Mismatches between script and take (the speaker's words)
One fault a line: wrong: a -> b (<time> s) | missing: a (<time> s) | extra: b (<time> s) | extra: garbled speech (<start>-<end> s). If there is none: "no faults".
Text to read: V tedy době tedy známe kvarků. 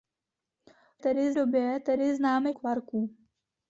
no faults